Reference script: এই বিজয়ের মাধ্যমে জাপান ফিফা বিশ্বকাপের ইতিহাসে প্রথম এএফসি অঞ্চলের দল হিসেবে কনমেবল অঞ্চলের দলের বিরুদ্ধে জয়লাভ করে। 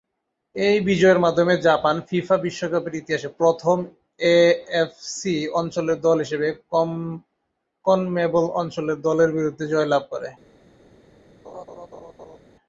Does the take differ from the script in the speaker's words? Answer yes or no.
no